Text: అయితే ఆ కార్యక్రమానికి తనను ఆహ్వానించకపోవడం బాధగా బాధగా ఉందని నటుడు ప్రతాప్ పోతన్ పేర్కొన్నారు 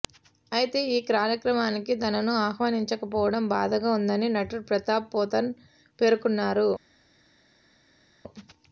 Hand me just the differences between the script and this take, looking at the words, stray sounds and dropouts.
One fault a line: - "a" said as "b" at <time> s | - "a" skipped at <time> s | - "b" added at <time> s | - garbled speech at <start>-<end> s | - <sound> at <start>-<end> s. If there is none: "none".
- "ఆ" said as "ఈ" at 0.9 s
- "బాధగా" skipped at 3.9 s